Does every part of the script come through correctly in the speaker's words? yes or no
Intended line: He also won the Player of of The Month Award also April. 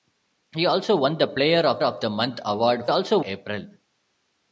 yes